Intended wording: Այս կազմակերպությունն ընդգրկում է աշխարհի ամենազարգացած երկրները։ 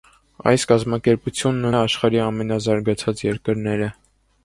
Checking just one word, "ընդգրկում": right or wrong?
wrong